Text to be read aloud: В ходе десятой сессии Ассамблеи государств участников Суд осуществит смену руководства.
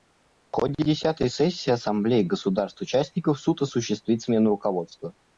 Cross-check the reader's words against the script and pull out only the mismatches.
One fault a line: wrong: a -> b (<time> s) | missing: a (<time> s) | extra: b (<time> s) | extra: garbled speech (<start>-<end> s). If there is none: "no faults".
no faults